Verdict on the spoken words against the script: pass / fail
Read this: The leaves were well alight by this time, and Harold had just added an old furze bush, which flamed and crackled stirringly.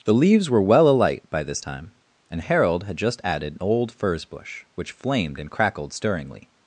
pass